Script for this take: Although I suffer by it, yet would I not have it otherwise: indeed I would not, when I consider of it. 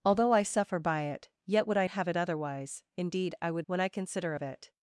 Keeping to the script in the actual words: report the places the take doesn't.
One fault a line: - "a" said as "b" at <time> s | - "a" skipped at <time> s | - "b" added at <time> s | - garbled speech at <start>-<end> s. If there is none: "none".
- "not" skipped at 1.9 s
- "not" skipped at 3.7 s